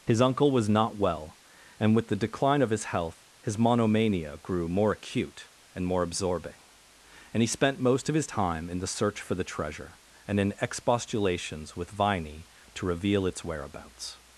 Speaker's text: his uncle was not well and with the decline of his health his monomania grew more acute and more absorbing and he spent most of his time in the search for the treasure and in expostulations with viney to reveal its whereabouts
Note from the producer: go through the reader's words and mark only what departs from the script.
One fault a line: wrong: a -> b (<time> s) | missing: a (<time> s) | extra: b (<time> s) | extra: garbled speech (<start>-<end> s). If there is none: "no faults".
no faults